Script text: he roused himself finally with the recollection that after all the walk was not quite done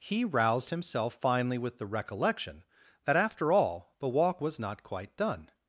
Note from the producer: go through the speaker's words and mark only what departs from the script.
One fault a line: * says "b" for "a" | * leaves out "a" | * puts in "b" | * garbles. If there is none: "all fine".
all fine